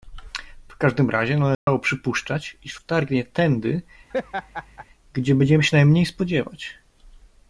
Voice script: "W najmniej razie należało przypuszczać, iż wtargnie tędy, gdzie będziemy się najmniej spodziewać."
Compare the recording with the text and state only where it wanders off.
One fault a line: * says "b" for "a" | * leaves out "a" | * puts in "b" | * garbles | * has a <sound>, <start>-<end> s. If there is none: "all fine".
* says "każdym" for "najmniej"
* has a dropout, 1.5-1.7 s
* has a laugh, 4.1-4.9 s